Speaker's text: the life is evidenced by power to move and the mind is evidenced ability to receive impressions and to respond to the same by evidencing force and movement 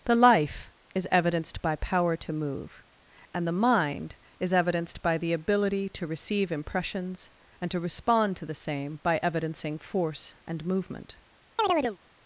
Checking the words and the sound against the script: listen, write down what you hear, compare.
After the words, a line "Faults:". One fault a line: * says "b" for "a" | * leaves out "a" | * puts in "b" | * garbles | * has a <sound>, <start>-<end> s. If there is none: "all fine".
the life is evidenced by power to move and the mind is evidenced by the ability to receive impressions and to respond to the same by evidencing force and movement
Faults:
* puts in "by the"
* has a chirp, 11.6-12.0 s